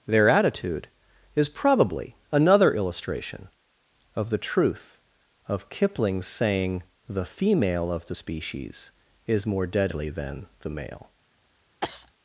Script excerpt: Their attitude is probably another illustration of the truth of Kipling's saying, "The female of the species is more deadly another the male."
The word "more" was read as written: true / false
true